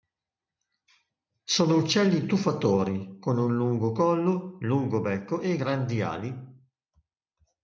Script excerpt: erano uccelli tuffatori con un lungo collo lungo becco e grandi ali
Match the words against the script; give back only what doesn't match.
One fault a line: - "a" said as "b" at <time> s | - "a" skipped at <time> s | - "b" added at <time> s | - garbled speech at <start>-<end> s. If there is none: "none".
- "erano" said as "sono" at 1.4 s